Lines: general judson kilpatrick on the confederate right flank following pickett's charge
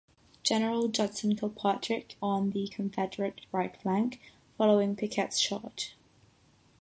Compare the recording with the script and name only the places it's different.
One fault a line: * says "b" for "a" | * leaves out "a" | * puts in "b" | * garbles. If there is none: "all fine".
all fine